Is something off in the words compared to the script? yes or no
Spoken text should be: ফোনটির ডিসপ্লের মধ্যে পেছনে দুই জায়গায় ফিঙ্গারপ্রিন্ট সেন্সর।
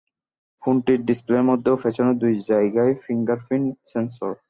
yes